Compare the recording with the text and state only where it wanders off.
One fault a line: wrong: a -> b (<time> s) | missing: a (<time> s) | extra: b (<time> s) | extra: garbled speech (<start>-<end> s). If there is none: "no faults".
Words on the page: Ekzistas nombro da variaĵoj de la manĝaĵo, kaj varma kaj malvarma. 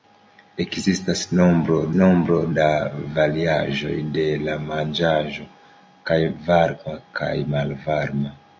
extra: nombro (2.0 s)